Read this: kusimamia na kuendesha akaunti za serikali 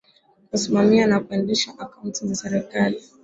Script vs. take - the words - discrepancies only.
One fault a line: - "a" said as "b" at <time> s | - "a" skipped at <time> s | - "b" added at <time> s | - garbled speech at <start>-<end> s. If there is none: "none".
none